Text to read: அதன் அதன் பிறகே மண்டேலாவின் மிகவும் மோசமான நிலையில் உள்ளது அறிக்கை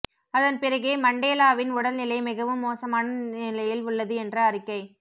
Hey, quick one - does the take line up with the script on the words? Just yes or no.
no